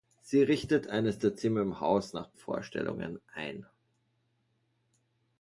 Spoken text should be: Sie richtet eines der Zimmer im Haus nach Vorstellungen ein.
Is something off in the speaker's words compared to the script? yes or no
no